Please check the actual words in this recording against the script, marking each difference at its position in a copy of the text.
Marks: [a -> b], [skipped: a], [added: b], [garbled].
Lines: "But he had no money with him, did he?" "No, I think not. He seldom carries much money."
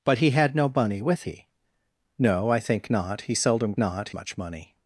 "But he had no money with [skipped: him, did] he?" "No, I think not. He seldom [carries -> not] much money."